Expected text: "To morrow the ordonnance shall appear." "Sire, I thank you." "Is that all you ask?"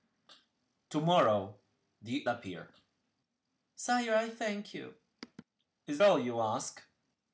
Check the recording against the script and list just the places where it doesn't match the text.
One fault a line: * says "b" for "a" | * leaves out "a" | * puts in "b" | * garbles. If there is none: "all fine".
* leaves out "ordonnance shall"
* leaves out "that"